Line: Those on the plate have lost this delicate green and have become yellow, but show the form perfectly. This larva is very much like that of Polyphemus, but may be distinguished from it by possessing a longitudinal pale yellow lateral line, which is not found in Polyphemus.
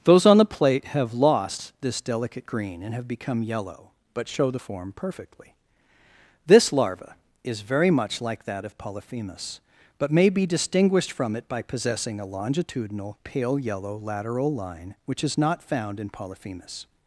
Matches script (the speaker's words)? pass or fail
pass